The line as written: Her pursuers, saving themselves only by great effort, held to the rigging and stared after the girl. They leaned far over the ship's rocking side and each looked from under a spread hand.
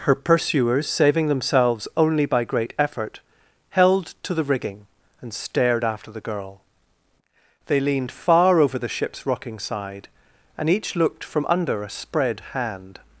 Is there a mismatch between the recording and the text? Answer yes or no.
no